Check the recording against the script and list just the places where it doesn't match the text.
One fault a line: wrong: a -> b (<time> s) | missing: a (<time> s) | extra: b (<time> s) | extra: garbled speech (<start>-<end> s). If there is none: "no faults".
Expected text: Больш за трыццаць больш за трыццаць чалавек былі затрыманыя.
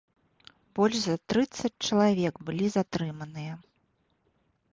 missing: больш за трыццаць (1.7 s)